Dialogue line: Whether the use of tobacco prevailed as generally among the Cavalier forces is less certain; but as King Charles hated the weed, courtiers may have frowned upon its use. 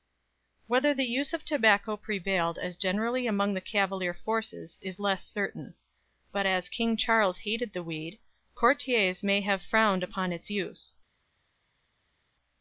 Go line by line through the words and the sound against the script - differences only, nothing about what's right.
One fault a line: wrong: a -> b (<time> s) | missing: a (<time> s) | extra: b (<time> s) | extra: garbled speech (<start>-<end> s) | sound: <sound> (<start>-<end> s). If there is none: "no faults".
no faults